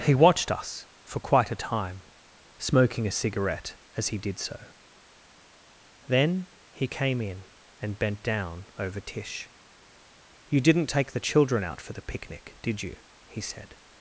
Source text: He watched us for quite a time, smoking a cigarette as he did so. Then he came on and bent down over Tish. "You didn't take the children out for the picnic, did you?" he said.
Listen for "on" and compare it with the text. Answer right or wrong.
wrong